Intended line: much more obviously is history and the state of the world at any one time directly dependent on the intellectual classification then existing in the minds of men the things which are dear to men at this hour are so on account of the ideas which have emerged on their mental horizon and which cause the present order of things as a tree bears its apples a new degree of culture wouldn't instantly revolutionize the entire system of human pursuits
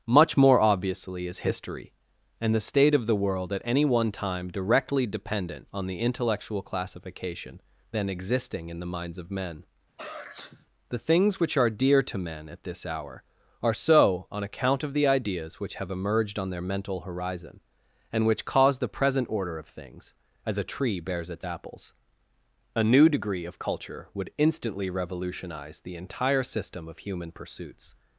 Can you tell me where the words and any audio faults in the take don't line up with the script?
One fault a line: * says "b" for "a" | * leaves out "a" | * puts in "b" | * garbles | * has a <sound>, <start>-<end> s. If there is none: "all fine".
* has a sneeze, 10.0-10.7 s
* says "would" for "wouldn't"